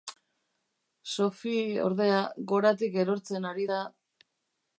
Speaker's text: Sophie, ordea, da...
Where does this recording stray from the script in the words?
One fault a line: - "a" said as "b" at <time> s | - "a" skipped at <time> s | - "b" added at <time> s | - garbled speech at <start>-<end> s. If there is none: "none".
- "goratik erortzen ari" added at 2.5 s